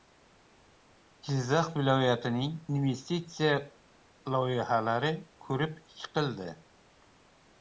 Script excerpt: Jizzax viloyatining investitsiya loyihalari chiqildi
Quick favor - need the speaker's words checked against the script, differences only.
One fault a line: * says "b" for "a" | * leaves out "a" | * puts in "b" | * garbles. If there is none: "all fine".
* puts in "ko‘rib"